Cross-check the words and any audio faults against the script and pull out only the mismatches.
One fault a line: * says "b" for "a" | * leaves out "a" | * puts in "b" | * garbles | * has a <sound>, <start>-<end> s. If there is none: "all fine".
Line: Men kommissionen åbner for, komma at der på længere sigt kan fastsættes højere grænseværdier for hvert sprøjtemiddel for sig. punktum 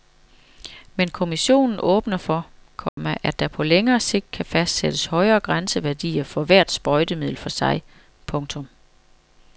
* has a dropout, 2.9-3.0 s